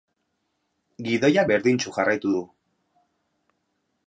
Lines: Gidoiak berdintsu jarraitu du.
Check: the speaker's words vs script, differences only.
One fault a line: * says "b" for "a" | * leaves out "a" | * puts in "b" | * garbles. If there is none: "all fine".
all fine